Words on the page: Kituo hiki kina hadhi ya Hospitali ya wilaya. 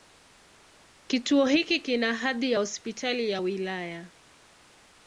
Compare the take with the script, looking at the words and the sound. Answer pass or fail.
pass